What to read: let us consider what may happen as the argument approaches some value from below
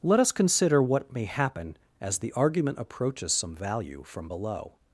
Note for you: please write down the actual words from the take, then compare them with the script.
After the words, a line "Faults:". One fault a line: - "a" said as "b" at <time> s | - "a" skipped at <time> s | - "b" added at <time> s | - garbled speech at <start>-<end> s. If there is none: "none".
let us consider what may happen as the argument approaches some value from below
Faults:
none